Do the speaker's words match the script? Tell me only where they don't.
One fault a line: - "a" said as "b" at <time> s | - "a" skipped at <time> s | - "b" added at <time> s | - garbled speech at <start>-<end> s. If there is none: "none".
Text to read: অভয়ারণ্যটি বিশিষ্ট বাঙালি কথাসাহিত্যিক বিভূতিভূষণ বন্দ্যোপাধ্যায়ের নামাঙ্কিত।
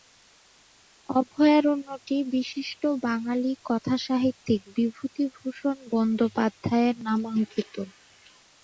none